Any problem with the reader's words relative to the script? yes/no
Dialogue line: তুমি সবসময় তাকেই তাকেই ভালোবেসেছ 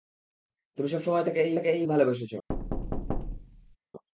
no